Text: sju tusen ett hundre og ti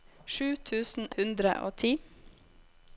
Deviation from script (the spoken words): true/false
true